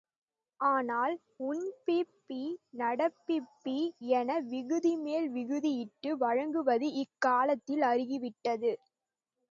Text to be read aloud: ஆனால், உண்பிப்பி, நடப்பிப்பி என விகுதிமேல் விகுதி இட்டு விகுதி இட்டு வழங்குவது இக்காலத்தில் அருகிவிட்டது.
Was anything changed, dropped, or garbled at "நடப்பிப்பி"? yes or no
no